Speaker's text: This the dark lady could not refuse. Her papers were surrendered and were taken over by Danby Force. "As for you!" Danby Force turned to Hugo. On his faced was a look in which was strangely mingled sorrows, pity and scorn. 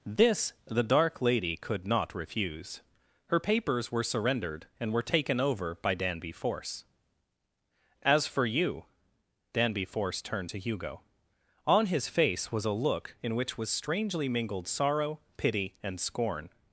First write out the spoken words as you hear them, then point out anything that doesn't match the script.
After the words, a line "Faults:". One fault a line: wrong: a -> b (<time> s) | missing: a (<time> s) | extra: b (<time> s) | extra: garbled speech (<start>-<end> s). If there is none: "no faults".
This the dark lady could not refuse. Her papers were surrendered and were taken over by Danby Force. "As for you!" Danby Force turned to Hugo. On his face was a look in which was strangely mingled sorrow, pity and scorn.
Faults:
wrong: faced -> face (12.1 s)
wrong: sorrows -> sorrow (14.7 s)